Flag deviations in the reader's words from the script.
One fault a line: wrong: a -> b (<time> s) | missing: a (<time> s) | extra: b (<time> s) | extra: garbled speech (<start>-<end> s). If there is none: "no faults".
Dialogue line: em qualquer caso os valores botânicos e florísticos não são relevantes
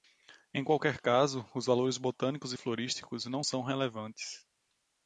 no faults